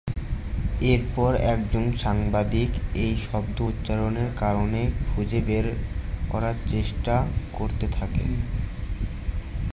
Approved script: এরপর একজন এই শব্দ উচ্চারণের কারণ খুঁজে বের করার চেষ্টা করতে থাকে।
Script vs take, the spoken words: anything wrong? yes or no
yes